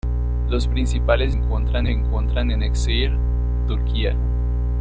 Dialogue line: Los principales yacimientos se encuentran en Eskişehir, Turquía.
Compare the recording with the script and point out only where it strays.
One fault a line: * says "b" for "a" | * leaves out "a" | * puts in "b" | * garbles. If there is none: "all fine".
* says "encuentran" for "yacimientos"